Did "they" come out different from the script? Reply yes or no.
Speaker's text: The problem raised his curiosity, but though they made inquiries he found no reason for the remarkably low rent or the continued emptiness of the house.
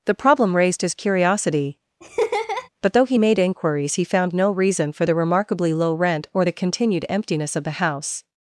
yes